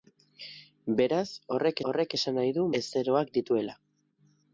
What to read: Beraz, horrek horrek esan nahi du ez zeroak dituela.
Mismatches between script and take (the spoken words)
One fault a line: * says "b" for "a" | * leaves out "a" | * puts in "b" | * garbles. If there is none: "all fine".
all fine